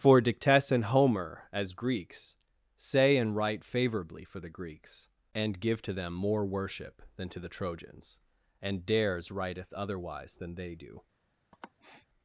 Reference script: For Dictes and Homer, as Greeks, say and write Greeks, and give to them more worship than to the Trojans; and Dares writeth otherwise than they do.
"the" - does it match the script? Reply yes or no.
yes